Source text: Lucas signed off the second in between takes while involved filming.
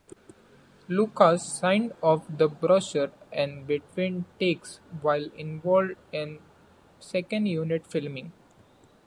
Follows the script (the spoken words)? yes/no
no